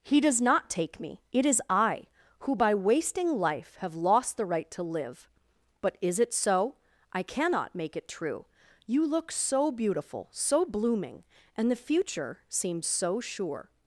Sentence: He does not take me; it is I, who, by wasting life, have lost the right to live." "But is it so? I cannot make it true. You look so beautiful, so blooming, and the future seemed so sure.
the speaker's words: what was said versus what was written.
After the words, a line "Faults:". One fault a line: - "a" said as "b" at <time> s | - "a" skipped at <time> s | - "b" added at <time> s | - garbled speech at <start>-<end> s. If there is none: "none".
He does not take me; it is I, who, by wasting life, have lost the right to live." "But is it so? I cannot make it true. You look so beautiful, so blooming, and the future seems so sure.
Faults:
- "seemed" said as "seems" at 12.5 s